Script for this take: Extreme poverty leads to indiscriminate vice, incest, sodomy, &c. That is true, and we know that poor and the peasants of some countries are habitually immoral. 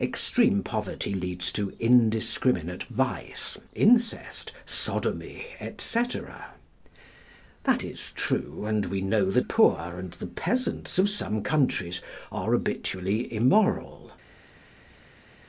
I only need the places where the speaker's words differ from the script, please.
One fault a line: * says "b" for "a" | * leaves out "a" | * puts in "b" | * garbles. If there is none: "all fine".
all fine